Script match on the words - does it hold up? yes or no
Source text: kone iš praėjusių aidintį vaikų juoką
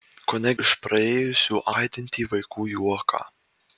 yes